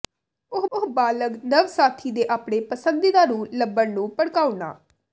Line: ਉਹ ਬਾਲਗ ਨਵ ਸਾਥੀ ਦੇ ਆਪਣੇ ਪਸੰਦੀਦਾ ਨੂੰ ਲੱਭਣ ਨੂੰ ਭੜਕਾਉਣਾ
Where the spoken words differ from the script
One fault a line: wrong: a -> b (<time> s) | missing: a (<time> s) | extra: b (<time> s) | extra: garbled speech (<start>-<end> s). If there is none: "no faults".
extra: ਉਹ (0.7 s)